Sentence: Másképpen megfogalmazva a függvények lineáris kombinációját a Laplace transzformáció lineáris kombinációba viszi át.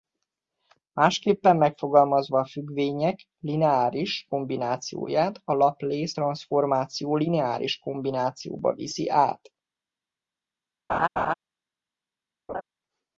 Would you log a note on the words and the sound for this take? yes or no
yes